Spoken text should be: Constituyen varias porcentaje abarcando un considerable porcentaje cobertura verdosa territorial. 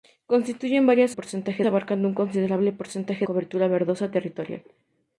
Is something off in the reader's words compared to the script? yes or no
no